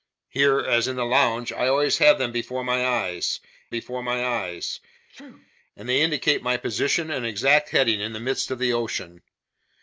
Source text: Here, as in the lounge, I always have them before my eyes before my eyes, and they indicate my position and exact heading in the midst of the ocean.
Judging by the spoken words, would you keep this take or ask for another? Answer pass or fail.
pass